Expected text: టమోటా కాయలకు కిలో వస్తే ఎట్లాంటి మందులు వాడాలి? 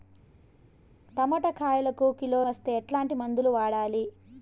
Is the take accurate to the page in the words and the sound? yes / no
yes